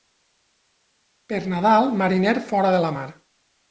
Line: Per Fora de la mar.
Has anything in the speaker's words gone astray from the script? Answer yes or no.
yes